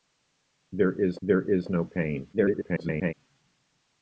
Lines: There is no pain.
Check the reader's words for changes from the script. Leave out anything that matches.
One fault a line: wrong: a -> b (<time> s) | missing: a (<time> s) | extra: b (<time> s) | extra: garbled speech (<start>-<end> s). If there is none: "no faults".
extra: there is (1.2 s)
extra: garbled speech (2.3-3.1 s)